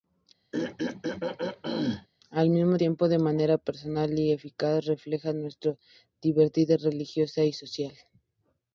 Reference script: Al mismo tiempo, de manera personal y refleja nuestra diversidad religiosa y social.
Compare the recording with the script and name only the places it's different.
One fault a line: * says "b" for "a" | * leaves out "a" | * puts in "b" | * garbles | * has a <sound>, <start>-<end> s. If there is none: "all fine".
* has a throat clearing, 0.5-2.1 s
* puts in "eficaz"